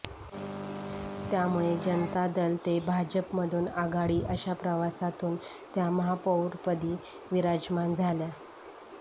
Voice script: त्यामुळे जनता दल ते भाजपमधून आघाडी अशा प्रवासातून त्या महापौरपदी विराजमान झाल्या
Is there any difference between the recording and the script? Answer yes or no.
no